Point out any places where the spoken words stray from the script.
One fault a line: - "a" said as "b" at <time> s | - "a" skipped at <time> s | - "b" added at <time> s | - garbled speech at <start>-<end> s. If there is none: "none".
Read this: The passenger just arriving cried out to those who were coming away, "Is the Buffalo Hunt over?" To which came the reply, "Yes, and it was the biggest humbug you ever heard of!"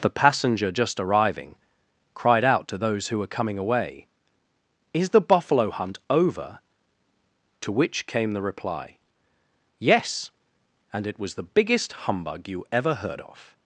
none